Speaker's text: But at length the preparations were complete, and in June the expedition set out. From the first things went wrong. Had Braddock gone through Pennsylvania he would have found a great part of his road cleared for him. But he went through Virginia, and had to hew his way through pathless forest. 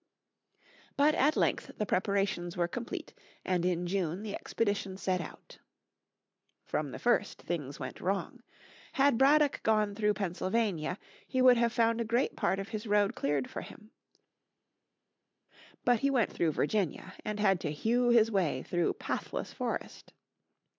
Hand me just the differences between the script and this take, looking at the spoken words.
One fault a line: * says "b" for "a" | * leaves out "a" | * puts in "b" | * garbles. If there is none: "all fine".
all fine